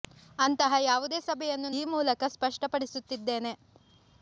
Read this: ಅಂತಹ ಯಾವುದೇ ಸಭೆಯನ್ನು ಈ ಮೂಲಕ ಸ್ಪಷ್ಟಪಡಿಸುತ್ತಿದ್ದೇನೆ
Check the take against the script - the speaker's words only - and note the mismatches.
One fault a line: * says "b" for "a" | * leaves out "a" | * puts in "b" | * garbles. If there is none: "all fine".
all fine